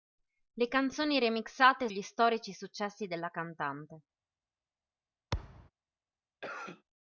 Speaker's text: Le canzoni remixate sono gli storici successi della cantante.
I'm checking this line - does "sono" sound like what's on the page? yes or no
no